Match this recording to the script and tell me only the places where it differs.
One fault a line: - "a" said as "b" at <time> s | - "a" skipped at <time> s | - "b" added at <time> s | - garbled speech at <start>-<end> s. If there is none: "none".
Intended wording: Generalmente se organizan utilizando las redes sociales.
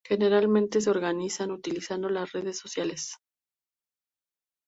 none